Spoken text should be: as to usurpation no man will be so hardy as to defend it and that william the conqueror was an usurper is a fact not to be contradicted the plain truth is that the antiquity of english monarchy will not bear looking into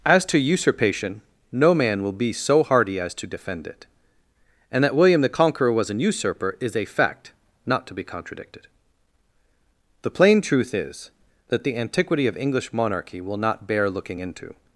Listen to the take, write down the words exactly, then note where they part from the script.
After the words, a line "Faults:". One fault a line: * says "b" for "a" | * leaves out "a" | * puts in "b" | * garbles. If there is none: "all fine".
as to usurpation no man will be so hardy as to defend it and that william the conqueror was an usurper is a fact not to be contradicted the plain truth is that the antiquity of english monarchy will not bear looking into
Faults:
all fine